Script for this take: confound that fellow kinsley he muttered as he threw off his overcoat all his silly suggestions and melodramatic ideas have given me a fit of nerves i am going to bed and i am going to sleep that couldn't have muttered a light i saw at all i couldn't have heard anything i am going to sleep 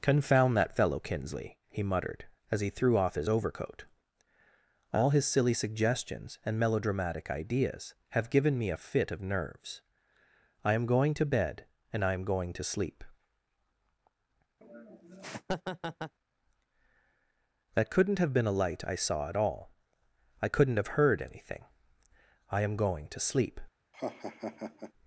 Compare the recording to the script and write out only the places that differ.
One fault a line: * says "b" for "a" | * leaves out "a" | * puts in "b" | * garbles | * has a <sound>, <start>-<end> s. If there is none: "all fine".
* has a laugh, 14.6-16.1 s
* says "been" for "muttered"
* has a laugh, 23.9-24.9 s